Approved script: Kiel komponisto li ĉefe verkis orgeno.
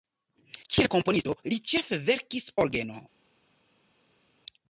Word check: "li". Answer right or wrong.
right